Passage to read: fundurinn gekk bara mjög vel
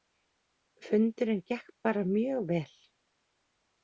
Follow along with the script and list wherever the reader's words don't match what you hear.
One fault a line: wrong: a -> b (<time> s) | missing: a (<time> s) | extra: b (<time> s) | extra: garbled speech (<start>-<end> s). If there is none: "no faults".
no faults